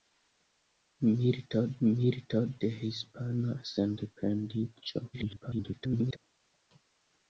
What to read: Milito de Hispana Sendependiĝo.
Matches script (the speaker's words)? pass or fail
fail